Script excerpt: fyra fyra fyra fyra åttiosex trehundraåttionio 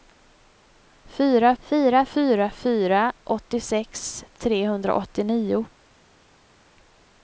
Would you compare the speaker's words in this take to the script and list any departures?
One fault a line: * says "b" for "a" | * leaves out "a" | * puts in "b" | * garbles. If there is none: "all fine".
all fine